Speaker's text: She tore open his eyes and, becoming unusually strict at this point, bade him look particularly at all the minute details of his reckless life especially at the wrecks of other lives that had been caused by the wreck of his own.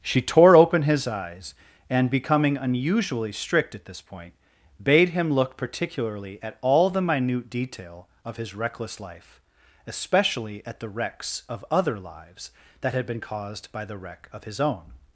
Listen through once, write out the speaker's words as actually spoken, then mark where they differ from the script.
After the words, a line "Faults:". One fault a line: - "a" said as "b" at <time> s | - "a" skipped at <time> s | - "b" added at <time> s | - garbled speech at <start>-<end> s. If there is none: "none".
She tore open his eyes and, becoming unusually strict at this point, bade him look particularly at all the minute detail of his reckless life especially at the wrecks of other lives that had been caused by the wreck of his own.
Faults:
- "details" said as "detail" at 7.5 s